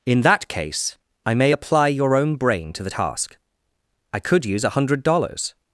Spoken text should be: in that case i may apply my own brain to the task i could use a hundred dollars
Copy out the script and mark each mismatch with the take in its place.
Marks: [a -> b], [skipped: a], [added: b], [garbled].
in that case i may apply [my -> your] own brain to the task i could use a hundred dollars